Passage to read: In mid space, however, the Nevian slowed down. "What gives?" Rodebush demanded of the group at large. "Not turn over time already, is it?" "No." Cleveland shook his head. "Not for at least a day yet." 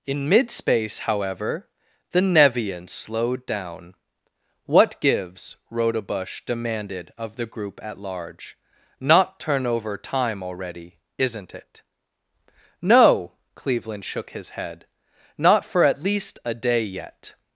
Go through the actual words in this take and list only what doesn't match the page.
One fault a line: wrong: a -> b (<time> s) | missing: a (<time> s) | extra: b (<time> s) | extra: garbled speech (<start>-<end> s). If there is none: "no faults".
wrong: is -> isn't (11.2 s)